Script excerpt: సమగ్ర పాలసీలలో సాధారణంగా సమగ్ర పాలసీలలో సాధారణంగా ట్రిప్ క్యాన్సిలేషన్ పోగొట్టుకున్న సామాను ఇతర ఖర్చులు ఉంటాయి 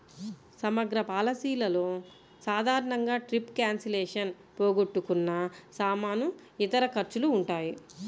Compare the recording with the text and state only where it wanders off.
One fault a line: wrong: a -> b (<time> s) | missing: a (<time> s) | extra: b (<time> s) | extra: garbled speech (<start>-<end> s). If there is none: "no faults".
missing: సమగ్ర పాలసీలలో సాధారణంగా (3.2 s)